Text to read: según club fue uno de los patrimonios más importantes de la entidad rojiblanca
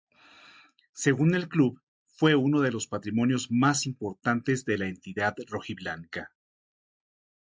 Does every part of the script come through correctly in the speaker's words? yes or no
no